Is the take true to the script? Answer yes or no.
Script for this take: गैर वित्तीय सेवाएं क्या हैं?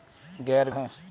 no